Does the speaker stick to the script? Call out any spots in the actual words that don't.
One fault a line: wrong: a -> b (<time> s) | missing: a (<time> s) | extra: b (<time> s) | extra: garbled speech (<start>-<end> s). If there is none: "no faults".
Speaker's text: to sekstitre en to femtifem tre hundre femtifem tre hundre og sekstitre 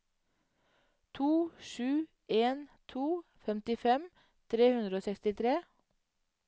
wrong: sekstitre -> sju (1.7 s)
missing: femtifem tre hundre (5.0 s)